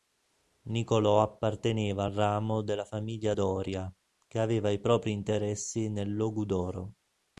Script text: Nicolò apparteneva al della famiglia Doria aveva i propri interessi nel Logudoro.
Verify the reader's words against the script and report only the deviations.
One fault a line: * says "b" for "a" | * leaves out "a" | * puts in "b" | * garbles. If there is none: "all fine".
* puts in "ramo"
* puts in "che"